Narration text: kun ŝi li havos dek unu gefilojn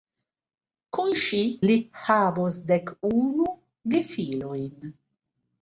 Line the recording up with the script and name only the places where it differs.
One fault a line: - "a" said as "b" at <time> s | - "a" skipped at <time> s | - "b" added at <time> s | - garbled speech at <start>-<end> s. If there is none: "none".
none